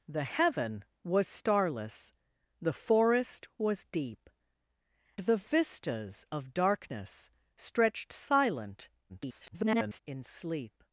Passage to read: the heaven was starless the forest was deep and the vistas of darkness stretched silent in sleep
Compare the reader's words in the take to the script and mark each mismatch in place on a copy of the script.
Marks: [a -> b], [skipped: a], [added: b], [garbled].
the heaven was starless the forest was deep [skipped: and] the vistas of darkness stretched silent [garbled] in sleep